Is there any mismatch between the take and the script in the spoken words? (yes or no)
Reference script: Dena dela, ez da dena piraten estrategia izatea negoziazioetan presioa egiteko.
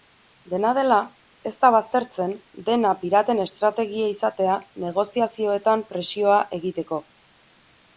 yes